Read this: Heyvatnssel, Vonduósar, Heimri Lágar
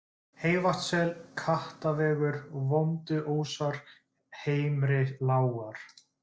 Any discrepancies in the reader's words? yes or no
yes